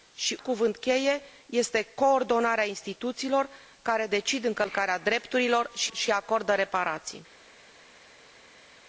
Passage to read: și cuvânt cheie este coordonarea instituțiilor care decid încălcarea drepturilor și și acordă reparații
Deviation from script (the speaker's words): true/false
false